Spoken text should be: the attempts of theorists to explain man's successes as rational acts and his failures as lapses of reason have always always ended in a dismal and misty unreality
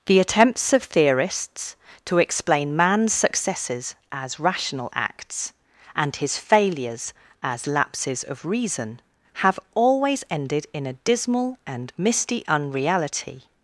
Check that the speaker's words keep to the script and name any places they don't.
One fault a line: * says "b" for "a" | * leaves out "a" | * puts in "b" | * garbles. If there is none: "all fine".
* leaves out "always"